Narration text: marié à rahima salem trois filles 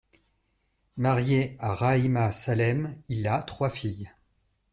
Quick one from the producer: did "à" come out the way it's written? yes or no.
yes